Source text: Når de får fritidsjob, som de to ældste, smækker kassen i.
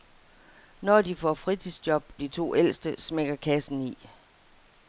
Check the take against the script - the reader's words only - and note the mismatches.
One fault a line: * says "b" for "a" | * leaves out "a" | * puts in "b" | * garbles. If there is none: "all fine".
* leaves out "som"